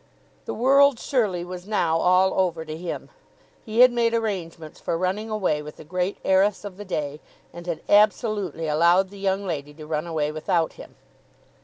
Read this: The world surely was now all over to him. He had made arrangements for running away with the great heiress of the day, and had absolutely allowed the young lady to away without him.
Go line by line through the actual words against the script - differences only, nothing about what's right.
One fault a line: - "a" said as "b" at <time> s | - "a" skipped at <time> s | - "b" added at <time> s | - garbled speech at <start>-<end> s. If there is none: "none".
- "run" added at 9.9 s